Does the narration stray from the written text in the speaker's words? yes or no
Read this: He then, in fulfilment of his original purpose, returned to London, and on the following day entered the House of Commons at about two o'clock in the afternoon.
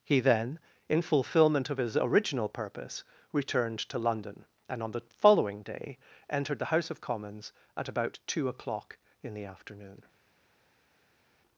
no